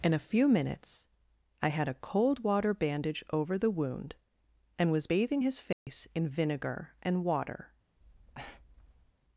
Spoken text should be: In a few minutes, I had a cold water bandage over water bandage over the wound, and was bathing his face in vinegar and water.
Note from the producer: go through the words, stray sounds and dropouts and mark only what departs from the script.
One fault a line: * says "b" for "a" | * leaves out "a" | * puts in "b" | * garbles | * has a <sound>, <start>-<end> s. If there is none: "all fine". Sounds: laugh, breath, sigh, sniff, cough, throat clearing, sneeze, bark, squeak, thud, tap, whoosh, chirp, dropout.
* leaves out "water bandage over"
* has a dropout, 5.7-5.9 s
* has a breath, 8.0-9.1 s